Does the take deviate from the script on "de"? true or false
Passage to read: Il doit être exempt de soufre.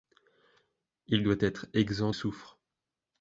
true